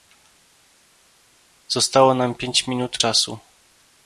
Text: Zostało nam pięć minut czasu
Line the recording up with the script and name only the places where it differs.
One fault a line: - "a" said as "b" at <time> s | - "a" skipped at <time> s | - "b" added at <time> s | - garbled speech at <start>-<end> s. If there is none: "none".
none